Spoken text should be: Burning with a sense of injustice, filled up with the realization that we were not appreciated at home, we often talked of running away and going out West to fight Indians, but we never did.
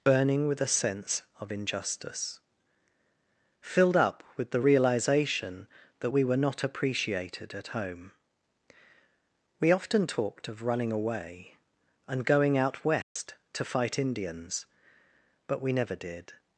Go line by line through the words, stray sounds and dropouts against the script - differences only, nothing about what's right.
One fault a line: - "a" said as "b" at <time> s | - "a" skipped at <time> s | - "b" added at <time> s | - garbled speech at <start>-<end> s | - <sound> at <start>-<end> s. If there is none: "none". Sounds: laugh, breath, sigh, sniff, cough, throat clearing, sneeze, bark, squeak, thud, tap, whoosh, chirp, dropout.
- dropout at 13.0-13.2 s